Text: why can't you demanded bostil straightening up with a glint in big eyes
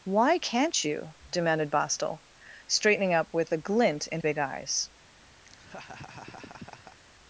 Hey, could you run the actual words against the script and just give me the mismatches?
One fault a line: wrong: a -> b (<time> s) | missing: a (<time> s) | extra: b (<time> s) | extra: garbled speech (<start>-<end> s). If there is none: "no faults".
no faults